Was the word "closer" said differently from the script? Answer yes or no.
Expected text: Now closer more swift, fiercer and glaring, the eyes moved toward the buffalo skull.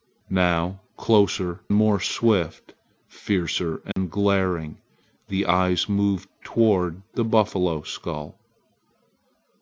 no